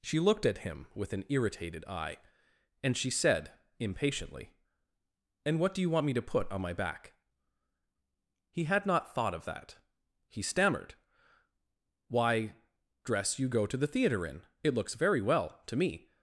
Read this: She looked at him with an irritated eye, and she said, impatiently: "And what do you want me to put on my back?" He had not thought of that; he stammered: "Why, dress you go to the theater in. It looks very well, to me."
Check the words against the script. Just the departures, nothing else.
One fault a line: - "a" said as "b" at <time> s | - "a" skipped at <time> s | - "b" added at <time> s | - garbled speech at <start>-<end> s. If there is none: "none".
none